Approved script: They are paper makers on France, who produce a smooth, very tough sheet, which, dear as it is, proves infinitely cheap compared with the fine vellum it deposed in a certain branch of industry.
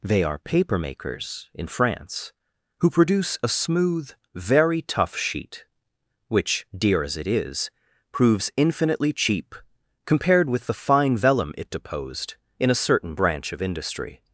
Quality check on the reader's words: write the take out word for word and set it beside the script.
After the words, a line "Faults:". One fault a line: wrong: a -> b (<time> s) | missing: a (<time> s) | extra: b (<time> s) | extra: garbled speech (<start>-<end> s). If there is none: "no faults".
They are paper makers in France, who produce a smooth, very tough sheet, which, dear as it is, proves infinitely cheap compared with the fine vellum it deposed in a certain branch of industry.
Faults:
wrong: on -> in (1.5 s)